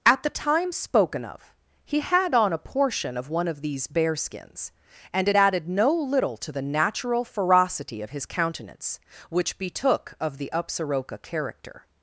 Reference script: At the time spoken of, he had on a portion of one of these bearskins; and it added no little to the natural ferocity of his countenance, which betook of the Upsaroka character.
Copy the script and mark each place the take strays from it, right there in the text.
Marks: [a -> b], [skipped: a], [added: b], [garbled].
At the time spoken of, he had on a portion of one of these bearskins; and it added no little to the natural ferocity of his countenance, which betook of the Upsaroka character.